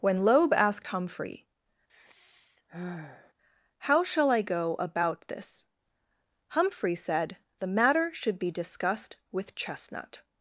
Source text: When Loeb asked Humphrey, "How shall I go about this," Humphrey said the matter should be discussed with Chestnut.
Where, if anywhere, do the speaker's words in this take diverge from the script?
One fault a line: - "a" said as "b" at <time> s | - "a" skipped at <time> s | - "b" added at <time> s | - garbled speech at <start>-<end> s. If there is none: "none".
none